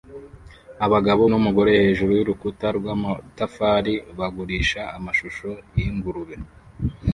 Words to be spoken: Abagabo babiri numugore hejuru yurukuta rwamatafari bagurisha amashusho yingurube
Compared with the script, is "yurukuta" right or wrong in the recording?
right